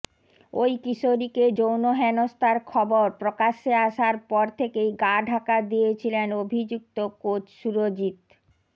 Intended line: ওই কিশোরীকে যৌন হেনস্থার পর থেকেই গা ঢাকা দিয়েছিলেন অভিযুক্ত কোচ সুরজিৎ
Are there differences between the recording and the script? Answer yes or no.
yes